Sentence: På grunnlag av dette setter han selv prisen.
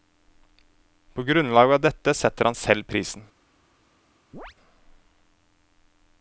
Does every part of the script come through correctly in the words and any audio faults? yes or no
no